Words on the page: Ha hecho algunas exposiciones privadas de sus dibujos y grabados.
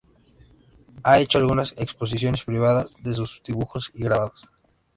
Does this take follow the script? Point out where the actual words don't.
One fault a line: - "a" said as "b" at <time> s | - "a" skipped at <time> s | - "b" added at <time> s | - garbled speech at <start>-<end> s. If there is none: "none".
none